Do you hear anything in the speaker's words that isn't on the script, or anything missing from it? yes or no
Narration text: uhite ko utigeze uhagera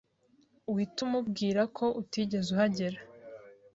yes